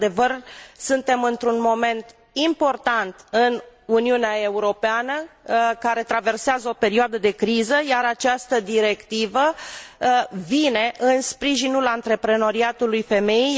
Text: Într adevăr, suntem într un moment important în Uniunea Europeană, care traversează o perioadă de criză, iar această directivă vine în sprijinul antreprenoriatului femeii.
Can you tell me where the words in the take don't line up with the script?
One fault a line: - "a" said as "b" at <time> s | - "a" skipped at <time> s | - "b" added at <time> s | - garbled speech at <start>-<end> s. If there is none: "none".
none